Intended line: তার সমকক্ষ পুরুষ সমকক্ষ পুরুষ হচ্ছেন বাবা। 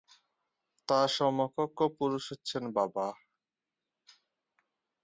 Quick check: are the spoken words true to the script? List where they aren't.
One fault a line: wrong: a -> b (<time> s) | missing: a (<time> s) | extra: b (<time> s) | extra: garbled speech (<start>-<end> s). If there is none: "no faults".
missing: সমকক্ষ পুরুষ (2.2 s)